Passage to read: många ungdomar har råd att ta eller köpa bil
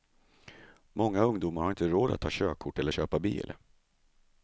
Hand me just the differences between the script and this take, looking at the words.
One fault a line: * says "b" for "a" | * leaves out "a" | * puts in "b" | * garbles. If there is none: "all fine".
* puts in "inte"
* puts in "körkort"